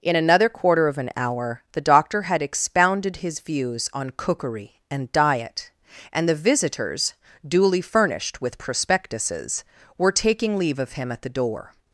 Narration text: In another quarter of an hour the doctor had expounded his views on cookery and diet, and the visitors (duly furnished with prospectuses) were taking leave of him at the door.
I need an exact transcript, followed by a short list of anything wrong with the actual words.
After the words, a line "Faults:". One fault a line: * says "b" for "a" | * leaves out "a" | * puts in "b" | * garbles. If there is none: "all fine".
In another quarter of an hour the doctor had expounded his views on cookery and diet, and the visitors (duly furnished with prospectuses) were taking leave of him at the door.
Faults:
all fine